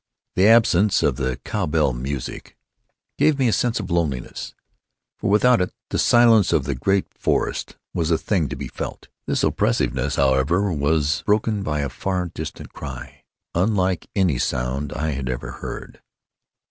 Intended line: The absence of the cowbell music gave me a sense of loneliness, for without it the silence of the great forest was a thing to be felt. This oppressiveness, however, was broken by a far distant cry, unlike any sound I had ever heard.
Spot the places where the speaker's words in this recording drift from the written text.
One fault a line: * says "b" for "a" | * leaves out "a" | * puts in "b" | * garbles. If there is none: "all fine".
all fine